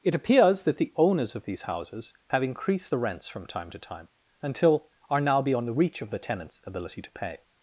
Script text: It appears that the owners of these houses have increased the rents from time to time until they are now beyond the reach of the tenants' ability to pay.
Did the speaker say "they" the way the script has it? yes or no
no